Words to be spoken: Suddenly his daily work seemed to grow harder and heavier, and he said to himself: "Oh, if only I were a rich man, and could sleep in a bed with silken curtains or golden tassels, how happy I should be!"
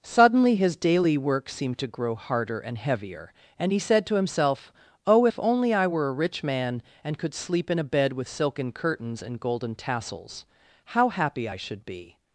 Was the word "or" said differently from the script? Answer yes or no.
yes